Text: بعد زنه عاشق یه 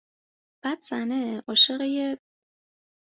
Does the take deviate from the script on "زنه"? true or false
false